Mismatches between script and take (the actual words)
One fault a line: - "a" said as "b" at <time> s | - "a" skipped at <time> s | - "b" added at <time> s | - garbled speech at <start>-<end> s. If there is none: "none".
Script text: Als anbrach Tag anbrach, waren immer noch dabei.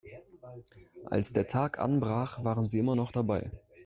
- "anbrach" said as "der" at 1.3 s
- "sie" added at 2.7 s